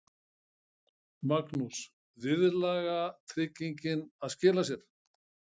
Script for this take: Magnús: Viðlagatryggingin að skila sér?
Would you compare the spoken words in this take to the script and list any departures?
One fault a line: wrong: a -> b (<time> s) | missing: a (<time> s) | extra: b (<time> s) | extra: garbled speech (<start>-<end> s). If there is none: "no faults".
no faults